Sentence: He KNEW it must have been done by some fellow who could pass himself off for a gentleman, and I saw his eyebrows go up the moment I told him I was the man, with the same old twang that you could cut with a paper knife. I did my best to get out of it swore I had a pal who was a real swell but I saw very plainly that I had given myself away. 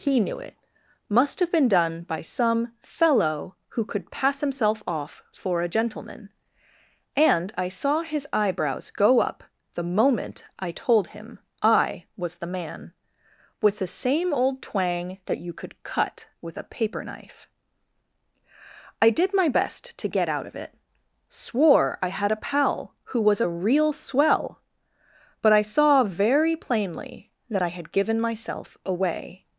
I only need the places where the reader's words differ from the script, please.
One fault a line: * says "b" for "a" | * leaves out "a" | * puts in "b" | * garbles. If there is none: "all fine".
all fine